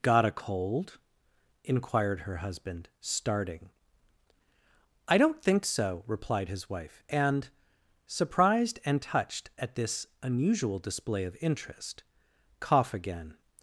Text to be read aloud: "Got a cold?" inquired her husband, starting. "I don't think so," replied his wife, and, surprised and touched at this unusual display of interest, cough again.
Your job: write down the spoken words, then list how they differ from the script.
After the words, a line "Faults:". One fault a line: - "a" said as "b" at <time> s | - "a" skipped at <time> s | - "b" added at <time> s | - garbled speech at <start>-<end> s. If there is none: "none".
"Got a cold?" inquired her husband, starting. "I don't think so," replied his wife, and, surprised and touched at this unusual display of interest, cough again.
Faults:
none